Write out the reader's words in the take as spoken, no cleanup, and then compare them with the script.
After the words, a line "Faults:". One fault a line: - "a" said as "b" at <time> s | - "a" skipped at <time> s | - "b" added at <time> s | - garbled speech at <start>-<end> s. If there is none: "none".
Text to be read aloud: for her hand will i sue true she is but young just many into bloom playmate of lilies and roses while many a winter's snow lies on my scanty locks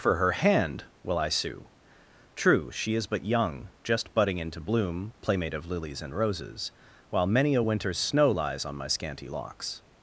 for her hand will i sue true she is but young just budding into bloom playmate of lilies and roses while many a winter's snow lies on my scanty locks
Faults:
- "many" said as "budding" at 4.2 s